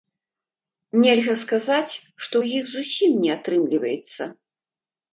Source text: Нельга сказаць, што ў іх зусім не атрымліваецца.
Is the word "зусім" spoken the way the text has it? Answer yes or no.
yes